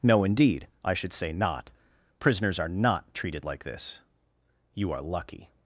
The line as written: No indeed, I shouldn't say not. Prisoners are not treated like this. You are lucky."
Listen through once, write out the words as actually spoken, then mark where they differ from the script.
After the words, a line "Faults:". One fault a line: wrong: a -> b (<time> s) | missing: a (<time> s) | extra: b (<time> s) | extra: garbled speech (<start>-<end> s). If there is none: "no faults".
No indeed, I should say not. Prisoners are not treated like this. You are lucky."
Faults:
wrong: shouldn't -> should (0.9 s)